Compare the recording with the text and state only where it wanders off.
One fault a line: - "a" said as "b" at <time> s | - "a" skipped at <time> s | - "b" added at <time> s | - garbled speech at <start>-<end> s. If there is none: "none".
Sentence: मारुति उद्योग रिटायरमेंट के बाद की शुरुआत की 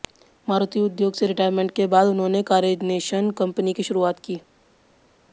- "से" added at 1.1 s
- "उन्होंने कारनेशन कंपनी" added at 2.1 s